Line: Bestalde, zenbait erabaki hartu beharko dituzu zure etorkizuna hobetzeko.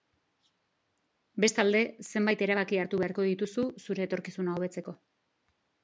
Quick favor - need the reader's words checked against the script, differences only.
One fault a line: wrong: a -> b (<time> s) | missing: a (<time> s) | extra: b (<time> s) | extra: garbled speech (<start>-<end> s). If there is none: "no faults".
no faults